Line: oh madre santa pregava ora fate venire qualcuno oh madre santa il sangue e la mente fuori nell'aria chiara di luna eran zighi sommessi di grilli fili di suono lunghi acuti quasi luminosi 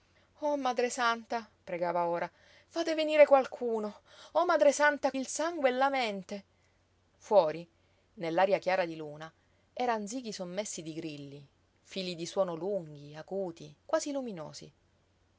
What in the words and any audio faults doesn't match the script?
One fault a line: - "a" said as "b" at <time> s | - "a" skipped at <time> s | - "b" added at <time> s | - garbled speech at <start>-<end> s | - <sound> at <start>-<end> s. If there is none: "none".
none